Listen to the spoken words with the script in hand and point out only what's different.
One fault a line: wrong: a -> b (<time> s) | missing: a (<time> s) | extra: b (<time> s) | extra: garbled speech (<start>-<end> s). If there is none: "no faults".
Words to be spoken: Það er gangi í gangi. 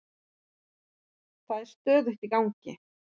wrong: gangi -> stöðugt (1.7 s)